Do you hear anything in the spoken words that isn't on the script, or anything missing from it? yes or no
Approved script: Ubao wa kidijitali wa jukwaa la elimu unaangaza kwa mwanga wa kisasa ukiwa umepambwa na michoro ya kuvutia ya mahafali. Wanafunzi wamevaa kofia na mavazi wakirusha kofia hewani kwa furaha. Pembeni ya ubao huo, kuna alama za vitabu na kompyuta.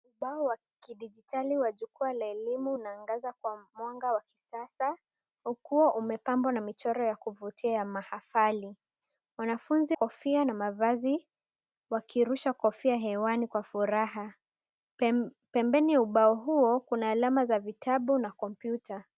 yes